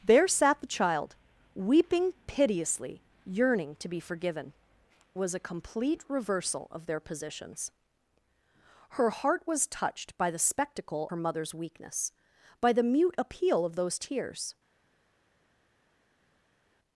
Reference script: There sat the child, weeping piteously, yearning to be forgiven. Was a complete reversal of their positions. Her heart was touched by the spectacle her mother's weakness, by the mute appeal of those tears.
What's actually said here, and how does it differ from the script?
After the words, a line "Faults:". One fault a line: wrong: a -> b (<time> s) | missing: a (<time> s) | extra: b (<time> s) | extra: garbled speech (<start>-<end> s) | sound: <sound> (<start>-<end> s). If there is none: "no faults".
There sat the child, weeping piteously, yearning to be forgiven. Was a complete reversal of their positions. Her heart was touched by the spectacle her mother's weakness, by the mute appeal of those tears.
Faults:
no faults